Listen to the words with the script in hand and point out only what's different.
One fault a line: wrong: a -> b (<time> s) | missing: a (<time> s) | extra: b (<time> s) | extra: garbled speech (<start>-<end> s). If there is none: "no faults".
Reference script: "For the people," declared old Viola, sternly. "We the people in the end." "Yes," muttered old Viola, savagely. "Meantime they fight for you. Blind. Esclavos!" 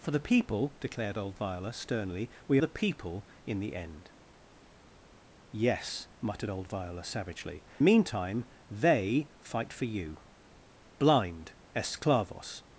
no faults